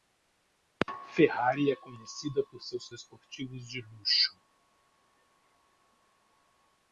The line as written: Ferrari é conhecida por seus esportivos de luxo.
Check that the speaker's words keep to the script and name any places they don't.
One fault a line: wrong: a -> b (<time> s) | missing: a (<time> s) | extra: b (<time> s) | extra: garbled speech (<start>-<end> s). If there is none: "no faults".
no faults